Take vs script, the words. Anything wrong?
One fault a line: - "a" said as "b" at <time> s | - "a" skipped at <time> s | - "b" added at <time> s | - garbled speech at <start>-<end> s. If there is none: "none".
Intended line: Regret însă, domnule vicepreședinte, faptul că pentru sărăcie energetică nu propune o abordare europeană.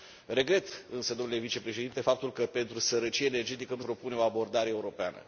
none